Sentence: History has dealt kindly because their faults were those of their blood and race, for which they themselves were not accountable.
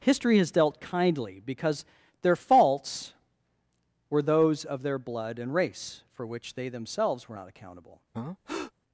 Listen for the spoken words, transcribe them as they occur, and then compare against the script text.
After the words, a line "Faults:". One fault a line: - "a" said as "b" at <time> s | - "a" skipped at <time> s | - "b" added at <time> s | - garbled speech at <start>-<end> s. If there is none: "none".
History has dealt kindly because their faults were those of their blood and race, for which they themselves were not accountable.
Faults:
none